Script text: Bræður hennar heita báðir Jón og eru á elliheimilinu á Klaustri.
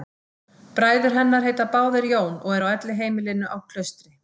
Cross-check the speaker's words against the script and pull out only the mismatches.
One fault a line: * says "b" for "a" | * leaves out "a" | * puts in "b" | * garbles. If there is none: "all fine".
all fine